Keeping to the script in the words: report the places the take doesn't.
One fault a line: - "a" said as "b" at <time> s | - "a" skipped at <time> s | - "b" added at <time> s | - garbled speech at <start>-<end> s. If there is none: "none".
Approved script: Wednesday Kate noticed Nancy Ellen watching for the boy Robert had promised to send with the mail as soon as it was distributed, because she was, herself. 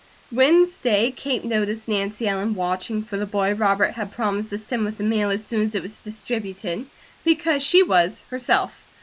none